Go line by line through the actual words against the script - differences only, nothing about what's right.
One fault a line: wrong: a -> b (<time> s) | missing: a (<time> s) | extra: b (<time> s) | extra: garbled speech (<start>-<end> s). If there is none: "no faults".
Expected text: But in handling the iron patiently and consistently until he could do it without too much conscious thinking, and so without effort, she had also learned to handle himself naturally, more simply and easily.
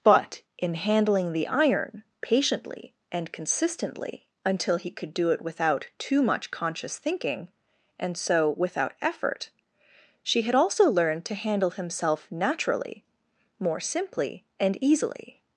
no faults